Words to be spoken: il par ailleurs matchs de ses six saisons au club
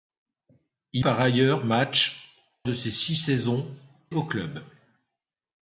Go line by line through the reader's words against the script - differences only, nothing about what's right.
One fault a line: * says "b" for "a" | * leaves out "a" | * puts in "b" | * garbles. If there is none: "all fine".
all fine